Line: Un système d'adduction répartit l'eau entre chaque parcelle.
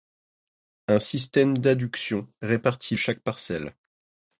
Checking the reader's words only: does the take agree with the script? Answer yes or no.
no